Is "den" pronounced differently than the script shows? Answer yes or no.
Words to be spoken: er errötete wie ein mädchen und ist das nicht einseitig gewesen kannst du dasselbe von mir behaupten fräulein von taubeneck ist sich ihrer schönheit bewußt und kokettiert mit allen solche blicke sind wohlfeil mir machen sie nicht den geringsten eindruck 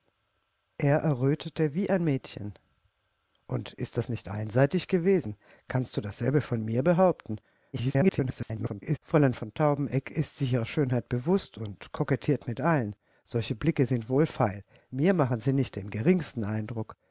no